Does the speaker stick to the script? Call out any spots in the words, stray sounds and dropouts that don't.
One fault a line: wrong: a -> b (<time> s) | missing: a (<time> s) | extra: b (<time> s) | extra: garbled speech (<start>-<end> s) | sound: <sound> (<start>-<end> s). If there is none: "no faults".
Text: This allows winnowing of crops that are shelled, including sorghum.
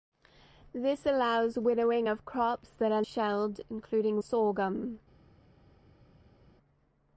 no faults